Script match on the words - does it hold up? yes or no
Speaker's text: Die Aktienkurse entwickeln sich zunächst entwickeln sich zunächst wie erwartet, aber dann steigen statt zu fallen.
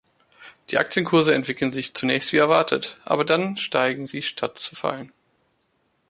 no